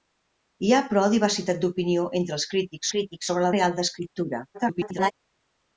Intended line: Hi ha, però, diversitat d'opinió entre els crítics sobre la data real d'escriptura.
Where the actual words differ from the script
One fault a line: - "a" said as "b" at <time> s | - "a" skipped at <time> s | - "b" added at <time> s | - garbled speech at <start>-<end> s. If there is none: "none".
- "crítics" added at 3.0 s
- "data" skipped at 3.5 s
- garbled speech at 4.5-5.1 s